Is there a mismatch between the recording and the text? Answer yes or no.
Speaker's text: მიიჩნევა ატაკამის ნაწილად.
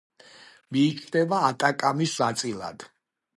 no